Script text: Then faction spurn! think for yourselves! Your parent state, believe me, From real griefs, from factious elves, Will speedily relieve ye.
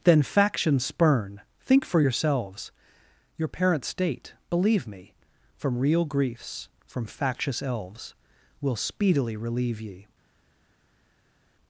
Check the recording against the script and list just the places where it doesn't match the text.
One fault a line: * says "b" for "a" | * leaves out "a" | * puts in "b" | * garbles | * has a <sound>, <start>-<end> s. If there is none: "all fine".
all fine